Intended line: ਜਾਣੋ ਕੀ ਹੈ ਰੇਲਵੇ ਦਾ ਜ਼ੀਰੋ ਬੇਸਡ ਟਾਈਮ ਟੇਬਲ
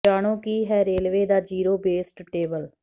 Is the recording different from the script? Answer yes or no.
yes